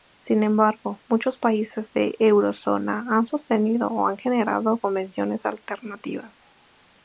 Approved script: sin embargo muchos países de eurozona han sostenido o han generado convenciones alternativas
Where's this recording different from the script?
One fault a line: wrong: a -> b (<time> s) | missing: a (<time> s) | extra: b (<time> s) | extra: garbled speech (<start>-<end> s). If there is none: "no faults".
no faults